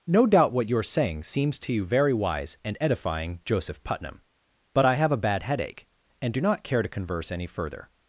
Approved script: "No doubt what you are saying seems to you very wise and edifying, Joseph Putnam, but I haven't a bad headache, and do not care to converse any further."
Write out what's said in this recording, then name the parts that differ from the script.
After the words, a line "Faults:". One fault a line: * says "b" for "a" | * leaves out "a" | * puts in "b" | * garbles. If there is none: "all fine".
"No doubt what you are saying seems to you very wise and edifying, Joseph Putnam, but I have a bad headache, and do not care to converse any further."
Faults:
* says "have" for "haven't"